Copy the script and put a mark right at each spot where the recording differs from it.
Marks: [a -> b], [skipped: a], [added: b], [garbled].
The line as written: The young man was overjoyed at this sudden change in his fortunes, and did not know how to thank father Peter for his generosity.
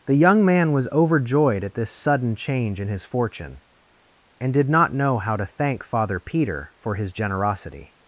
The young man was overjoyed at this sudden change in his [fortunes, -> fortune] and did not know how to thank father Peter for his generosity.